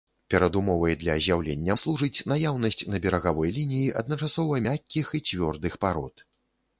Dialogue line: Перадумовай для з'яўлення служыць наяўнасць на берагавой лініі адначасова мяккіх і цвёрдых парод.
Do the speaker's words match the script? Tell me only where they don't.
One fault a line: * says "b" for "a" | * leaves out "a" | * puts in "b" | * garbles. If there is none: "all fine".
all fine